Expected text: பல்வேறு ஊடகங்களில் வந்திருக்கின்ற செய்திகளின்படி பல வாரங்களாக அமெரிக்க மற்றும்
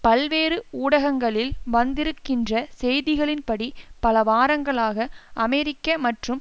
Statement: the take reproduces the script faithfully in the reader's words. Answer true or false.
true